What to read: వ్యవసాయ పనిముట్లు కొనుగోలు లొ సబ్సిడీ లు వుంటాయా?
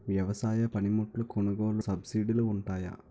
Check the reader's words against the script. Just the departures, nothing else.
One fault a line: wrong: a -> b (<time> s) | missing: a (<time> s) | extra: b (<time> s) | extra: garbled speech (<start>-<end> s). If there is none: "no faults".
missing: లొ (1.8 s)